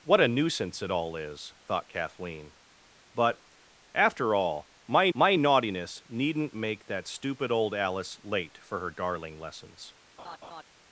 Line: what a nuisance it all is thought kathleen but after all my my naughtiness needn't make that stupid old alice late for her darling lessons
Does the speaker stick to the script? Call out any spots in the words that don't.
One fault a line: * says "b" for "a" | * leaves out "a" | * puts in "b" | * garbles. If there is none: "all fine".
all fine